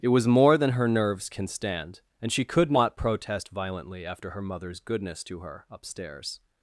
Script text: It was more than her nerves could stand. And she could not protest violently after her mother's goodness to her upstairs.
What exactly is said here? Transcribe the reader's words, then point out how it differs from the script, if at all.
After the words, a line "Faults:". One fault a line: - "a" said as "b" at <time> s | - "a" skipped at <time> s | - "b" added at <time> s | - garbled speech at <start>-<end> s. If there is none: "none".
It was more than her nerves can stand. And she could not protest violently after her mother's goodness to her upstairs.
Faults:
- "could" said as "can" at 1.3 s